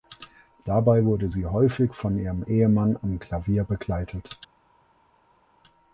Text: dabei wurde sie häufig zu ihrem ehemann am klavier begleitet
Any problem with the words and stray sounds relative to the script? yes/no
yes